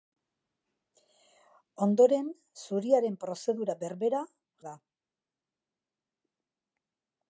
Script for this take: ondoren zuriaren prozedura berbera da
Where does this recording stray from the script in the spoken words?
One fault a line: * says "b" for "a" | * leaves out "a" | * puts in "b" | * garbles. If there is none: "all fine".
all fine